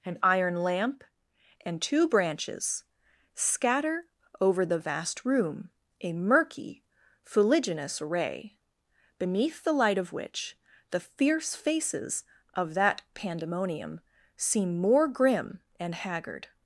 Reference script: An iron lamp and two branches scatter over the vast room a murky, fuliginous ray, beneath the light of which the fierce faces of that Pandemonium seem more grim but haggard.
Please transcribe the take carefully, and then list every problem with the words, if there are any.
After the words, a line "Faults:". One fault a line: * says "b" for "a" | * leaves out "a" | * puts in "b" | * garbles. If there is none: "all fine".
An iron lamp and two branches scatter over the vast room a murky, fuliginous ray, beneath the light of which the fierce faces of that Pandemonium seem more grim and haggard.
Faults:
* says "and" for "but"